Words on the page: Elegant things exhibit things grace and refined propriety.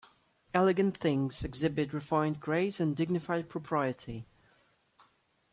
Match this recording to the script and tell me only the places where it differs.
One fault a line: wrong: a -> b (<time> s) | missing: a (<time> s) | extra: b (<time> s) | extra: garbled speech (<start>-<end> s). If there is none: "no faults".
wrong: things -> refined (1.9 s)
wrong: refined -> dignified (3.0 s)